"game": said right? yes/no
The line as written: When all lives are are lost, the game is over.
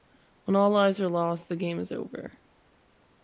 yes